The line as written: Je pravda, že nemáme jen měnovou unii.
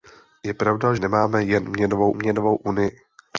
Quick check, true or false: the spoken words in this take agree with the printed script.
false